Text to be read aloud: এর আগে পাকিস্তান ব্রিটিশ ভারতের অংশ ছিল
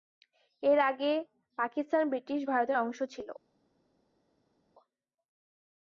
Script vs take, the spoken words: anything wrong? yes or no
no